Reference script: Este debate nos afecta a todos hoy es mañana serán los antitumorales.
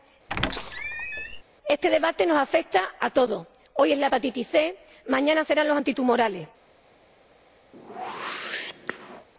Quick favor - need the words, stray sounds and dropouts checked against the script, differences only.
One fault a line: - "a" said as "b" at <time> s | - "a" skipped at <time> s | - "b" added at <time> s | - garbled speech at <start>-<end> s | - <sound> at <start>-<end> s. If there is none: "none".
- squeak at 0.3-1.4 s
- "la hepatitis C" added at 4.0 s
- whoosh at 7.7-9.3 s